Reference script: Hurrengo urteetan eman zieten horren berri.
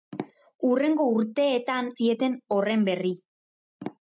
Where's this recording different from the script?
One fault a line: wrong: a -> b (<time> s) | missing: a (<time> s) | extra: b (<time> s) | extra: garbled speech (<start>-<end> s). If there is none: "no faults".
missing: eman (1.9 s)